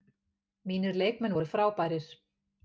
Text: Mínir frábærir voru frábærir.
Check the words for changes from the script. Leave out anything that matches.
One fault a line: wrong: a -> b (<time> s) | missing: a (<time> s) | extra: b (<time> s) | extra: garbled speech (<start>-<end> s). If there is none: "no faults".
wrong: frábærir -> leikmenn (1.0 s)